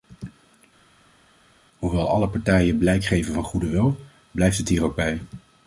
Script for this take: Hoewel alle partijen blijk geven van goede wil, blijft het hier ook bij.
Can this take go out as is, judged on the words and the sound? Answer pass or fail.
pass